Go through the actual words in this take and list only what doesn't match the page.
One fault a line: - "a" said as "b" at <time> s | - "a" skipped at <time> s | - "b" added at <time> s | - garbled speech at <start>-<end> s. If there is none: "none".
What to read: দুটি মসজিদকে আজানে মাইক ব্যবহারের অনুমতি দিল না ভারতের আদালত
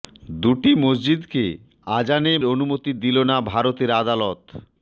- "মাইক ব্যবহারের" skipped at 2.3 s